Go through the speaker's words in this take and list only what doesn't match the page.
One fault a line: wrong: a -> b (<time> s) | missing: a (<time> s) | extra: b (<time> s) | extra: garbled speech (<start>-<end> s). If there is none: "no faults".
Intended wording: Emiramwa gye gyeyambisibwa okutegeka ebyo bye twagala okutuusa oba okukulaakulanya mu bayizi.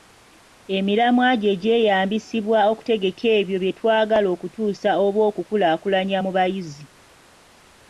no faults